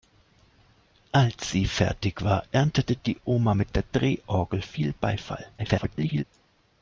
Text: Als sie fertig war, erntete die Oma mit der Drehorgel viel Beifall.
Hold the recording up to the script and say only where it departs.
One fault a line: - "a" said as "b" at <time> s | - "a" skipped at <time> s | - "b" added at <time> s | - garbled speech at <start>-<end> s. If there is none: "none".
- garbled speech at 5.6-6.2 s